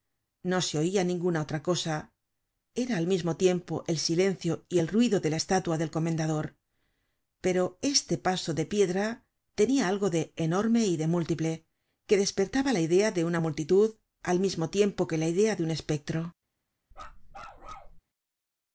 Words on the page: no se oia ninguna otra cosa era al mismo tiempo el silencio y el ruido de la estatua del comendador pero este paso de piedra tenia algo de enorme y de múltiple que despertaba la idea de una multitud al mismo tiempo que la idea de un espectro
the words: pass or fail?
pass